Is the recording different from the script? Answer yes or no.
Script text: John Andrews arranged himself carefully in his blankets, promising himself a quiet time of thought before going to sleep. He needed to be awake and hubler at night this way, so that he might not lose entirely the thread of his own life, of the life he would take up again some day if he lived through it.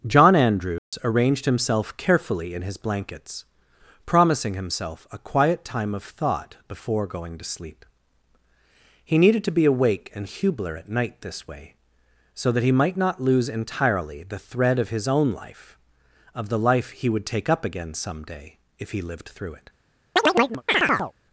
no